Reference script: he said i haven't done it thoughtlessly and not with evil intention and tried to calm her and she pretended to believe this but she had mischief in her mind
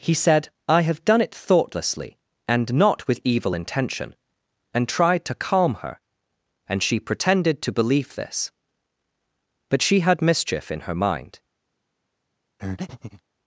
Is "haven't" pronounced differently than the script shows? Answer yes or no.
yes